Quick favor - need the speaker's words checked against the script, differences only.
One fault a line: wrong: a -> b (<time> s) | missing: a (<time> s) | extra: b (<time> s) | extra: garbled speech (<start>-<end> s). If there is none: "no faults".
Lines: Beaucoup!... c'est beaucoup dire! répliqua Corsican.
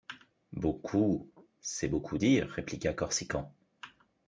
no faults